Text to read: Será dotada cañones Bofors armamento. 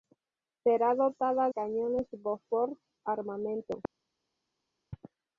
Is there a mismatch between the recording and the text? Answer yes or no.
no